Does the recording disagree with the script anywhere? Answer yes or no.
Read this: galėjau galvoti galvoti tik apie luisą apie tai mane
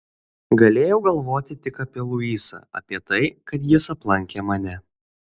yes